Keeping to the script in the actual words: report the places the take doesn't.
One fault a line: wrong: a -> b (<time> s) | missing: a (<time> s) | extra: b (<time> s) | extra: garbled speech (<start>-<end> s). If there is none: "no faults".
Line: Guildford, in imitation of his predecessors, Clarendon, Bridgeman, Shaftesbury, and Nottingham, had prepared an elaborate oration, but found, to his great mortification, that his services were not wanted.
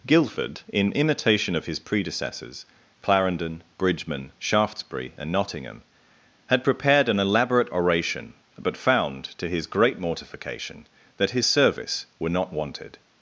wrong: services -> service (11.4 s)